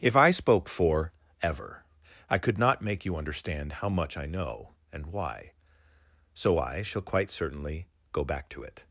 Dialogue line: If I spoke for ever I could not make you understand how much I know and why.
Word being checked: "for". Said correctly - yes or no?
yes